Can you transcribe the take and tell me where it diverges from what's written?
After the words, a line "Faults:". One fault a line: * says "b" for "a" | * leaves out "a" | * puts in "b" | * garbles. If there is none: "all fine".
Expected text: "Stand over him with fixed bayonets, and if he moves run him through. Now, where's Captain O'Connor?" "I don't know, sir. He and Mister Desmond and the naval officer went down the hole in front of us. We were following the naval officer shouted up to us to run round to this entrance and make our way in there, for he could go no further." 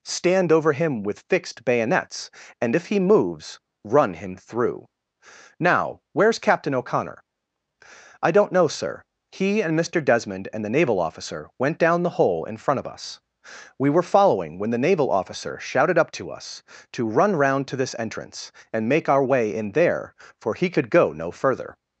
"Stand over him with fixed bayonets, and if he moves run him through. Now, where's Captain O'Connor?" "I don't know, sir. He and Mister Desmond and the naval officer went down the hole in front of us. We were following when the naval officer shouted up to us to run round to this entrance and make our way in there, for he could go no further."
Faults:
* puts in "when"